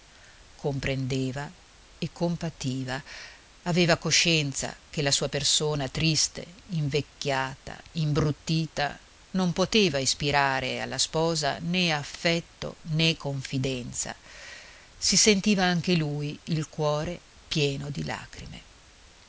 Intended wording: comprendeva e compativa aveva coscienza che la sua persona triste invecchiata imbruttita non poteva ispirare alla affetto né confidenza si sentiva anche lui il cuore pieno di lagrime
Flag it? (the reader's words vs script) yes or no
yes